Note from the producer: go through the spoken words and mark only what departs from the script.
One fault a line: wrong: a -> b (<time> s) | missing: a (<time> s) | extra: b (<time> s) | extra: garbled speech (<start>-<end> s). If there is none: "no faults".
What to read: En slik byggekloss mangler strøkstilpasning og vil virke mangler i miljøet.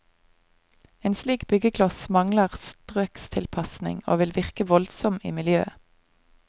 wrong: mangler -> voldsom (4.7 s)